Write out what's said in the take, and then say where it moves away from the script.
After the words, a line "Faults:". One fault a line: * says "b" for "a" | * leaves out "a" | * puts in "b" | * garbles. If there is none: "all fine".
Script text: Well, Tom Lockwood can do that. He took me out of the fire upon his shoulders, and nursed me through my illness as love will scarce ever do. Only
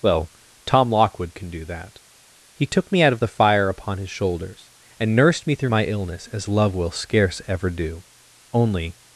Well, Tom Lockwood can do that. He took me out of the fire upon his shoulders, and nursed me through my illness as love will scarce ever do. Only
Faults:
all fine